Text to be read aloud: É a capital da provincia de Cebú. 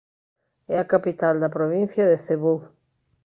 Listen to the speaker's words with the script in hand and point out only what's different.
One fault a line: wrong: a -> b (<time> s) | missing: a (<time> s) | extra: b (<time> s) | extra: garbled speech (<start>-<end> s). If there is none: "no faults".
no faults